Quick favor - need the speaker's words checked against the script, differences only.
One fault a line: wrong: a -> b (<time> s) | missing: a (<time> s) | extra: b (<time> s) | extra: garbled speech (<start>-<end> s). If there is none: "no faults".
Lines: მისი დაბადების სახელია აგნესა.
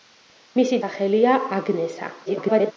missing: დაბადების (0.8 s)
extra: garbled speech (2.3-2.7 s)